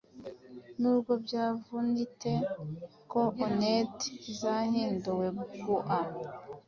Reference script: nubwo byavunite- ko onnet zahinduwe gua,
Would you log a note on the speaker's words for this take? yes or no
no